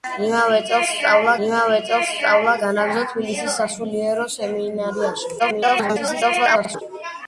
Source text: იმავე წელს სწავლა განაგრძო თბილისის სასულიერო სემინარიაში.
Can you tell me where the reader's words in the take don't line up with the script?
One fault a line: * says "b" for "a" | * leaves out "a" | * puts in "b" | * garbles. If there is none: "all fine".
* puts in "იმავე წელს სწავლა"
* garbles